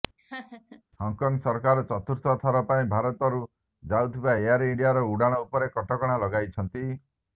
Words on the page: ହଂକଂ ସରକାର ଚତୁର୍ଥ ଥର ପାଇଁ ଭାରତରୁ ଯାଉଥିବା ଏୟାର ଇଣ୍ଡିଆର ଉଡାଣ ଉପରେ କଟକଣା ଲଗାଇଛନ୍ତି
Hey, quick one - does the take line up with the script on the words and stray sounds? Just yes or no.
no